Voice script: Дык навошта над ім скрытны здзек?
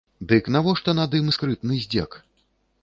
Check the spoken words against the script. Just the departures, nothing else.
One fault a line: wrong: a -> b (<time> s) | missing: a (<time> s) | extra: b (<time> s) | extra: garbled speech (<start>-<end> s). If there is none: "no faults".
no faults